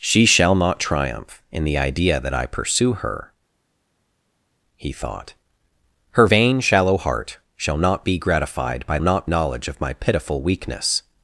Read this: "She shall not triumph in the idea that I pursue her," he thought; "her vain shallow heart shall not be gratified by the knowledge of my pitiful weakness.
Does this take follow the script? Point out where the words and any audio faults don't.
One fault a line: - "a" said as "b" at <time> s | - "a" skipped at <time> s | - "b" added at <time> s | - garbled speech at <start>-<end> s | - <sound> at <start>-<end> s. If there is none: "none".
- "the" said as "not" at 9.0 s